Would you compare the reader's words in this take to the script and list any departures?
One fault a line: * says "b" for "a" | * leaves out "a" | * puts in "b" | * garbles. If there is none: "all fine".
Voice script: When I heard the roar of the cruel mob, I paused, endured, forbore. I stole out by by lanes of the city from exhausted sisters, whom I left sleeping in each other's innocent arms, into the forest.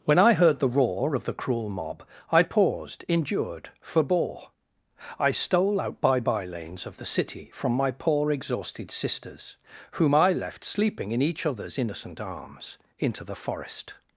* puts in "my poor"